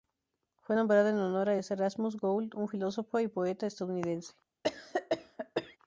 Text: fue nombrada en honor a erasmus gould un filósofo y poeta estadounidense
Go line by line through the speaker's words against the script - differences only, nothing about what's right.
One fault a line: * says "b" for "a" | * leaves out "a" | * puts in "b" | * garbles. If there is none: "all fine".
all fine